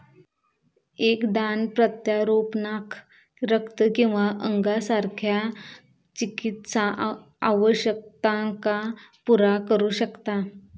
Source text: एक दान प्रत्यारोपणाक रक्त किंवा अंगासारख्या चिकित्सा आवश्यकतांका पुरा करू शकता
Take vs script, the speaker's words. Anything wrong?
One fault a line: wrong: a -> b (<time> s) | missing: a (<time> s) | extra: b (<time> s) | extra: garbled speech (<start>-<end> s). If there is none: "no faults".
no faults